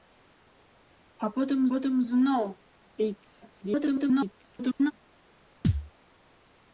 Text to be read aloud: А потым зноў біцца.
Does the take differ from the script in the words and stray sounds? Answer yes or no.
yes